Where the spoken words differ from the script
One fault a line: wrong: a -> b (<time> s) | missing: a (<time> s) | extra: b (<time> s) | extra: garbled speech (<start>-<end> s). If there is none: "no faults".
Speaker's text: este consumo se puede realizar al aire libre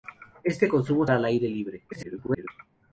missing: se puede realizar (1.1 s)
extra: garbled speech (1.9-2.5 s)